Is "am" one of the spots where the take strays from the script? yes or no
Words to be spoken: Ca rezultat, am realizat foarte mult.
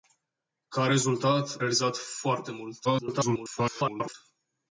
yes